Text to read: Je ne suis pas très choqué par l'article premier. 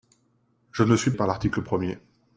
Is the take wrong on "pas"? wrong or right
wrong